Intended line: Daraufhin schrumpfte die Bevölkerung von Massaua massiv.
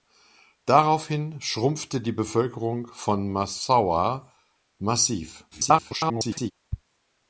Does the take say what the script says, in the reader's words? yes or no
no